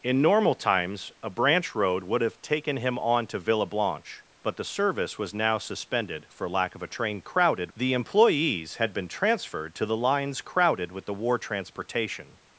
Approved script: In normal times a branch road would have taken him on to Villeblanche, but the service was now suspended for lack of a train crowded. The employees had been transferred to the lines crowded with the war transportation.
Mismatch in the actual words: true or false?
false